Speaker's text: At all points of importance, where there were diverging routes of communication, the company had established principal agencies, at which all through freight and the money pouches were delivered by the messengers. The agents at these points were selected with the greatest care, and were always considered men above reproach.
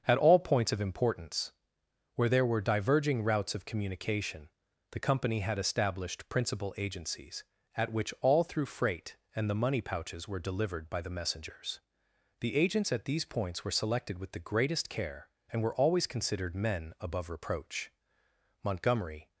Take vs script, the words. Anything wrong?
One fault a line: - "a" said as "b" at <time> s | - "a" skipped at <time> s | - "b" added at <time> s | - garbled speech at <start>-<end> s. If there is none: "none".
- "Montgomery" added at 18.6 s